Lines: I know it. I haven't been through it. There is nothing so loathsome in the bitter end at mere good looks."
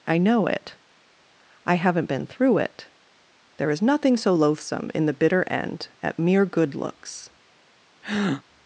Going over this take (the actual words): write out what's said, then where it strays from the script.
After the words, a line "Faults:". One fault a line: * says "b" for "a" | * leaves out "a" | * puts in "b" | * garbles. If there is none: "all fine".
I know it. I haven't been through it. There is nothing so loathsome in the bitter end at mere good looks."
Faults:
all fine